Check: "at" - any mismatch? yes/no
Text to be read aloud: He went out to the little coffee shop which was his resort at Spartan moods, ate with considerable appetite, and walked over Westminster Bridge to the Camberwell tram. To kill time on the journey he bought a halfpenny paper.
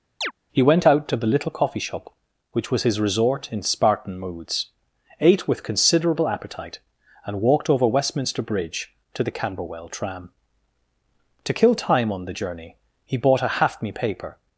yes